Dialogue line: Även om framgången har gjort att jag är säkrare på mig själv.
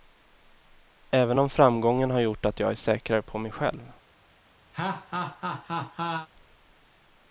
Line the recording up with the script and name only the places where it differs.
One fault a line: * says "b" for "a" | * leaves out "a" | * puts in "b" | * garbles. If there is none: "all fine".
all fine